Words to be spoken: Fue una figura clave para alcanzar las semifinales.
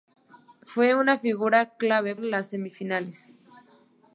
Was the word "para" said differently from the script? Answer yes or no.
yes